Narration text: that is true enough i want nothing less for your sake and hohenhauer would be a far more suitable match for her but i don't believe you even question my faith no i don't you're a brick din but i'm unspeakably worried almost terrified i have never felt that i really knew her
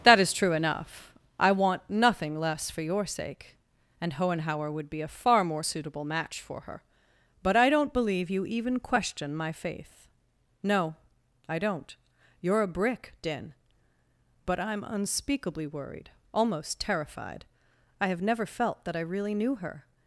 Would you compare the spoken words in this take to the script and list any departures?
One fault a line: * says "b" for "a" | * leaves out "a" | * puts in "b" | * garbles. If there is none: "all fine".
all fine